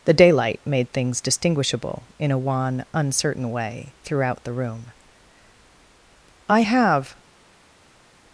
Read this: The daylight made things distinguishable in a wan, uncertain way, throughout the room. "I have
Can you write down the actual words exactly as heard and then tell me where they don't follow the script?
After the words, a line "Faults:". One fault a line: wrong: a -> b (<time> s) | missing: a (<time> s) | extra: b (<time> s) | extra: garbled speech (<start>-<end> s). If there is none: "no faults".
The daylight made things distinguishable in a wan, uncertain way, throughout the room. "I have
Faults:
no faults